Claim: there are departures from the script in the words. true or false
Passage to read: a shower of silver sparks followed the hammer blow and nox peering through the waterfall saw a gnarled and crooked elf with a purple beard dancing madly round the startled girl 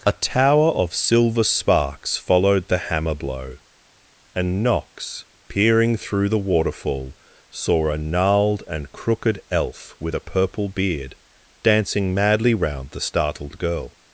true